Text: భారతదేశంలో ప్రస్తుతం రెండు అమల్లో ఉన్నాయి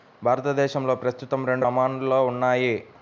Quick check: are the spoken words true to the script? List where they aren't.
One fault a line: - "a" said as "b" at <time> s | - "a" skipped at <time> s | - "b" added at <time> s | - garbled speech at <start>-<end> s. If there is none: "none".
none